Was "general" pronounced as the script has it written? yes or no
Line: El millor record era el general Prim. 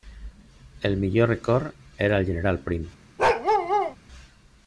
yes